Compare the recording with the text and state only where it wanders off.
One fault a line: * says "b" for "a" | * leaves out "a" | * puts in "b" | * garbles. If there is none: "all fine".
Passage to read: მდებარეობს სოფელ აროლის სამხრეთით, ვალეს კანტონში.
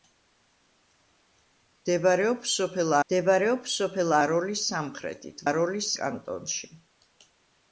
* puts in "მდებარეობს სოფელ"
* says "აროლის" for "ვალეს"